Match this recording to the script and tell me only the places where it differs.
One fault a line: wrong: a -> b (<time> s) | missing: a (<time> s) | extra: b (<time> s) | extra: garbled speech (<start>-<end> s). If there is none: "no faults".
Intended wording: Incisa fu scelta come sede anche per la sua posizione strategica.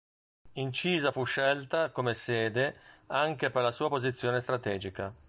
no faults